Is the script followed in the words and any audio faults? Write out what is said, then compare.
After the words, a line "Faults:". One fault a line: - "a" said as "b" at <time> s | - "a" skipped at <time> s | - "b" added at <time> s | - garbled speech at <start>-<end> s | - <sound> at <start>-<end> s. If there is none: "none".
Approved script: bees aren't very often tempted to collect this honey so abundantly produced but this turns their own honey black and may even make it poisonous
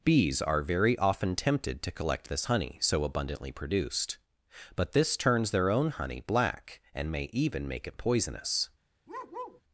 bees are very often tempted to collect this honey so abundantly produced but this turns their own honey black and may even make it poisonous
Faults:
- "aren't" said as "are" at 0.4 s
- bark at 9.1-9.6 s